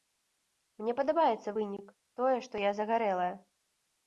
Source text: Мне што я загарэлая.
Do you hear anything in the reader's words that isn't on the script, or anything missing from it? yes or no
yes